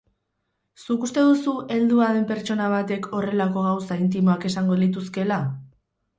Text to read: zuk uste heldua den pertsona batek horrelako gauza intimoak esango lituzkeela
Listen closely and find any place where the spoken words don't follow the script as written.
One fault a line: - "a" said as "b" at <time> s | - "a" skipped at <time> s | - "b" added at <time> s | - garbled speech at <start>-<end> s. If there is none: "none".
- "duzu" added at 1.3 s